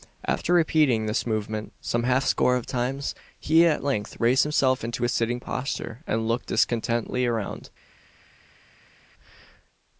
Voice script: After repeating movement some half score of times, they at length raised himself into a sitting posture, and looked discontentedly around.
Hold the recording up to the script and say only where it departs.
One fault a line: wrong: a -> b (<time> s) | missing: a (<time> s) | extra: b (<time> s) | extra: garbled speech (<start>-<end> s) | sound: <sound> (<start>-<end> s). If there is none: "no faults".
extra: this (1.1 s)
wrong: they -> he (3.4 s)